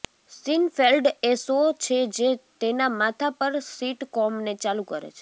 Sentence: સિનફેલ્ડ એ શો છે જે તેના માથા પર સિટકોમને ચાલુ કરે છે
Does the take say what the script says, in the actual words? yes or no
yes